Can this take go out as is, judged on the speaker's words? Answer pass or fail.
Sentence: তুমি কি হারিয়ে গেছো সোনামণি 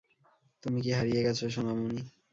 pass